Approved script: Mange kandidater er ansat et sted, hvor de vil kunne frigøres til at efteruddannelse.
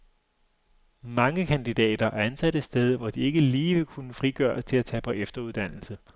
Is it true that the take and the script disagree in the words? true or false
true